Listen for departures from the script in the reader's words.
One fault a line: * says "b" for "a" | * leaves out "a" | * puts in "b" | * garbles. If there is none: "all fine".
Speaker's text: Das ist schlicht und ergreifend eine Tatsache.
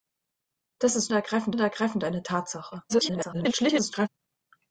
* says "ergreifend" for "schlicht"
* garbles